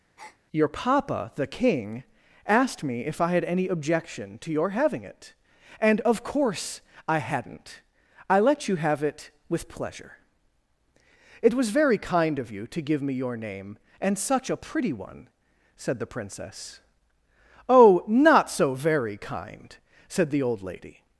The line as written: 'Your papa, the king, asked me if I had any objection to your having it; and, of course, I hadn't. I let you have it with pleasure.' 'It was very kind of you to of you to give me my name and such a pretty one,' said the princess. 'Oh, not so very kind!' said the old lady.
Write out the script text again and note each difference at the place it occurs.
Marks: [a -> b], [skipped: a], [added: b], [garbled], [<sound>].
[breath] 'Your papa, the king, asked me if I had any objection to your having it; and, of course, I hadn't. I let you have it with pleasure.' 'It was very kind of you to [skipped: of you to] give me [my -> your] name and such a pretty one,' said the princess. 'Oh, not so very kind!' said the old lady.